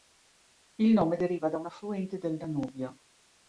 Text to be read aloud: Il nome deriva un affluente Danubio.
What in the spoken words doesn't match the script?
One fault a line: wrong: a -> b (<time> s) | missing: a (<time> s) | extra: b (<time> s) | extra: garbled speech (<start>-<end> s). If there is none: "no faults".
extra: da (1.5 s)
extra: del (2.2 s)